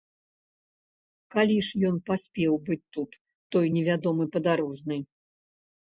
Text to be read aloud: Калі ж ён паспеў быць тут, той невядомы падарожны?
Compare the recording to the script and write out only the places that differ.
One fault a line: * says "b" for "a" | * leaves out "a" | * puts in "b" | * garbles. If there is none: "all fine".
all fine